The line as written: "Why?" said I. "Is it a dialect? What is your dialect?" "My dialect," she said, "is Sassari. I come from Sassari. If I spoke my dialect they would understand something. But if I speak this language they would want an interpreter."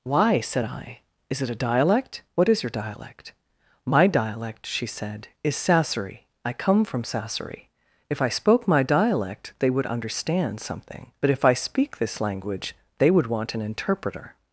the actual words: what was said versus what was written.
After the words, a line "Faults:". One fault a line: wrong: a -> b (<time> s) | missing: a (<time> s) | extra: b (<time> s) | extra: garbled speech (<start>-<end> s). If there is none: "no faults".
"Why?" said I. "Is it a dialect? What is your dialect?" "My dialect," she said, "is Sassari. I come from Sassari. If I spoke my dialect they would understand something. But if I speak this language they would want an interpreter."
Faults:
no faults